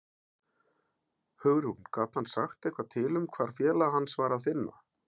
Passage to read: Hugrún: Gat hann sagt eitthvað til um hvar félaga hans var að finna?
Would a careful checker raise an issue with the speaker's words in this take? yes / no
no